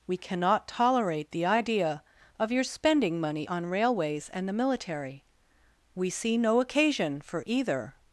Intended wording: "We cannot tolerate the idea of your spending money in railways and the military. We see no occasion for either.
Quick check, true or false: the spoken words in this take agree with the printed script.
false